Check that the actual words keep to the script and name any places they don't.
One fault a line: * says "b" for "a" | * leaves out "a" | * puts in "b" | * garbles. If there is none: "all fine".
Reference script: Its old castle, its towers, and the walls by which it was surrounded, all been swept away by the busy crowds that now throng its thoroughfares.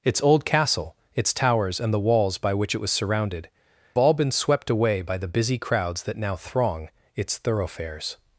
all fine